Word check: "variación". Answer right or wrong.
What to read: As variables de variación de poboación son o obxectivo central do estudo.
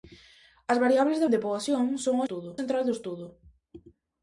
wrong